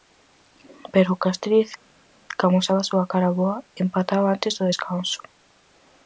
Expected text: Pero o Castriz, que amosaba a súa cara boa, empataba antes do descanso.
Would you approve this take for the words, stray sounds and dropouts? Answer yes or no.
yes